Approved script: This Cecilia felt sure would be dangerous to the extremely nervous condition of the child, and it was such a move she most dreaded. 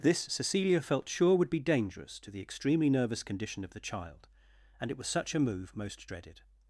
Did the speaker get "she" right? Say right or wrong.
wrong